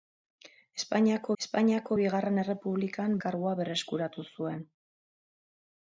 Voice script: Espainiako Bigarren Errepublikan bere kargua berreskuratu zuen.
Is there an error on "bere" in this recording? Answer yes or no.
yes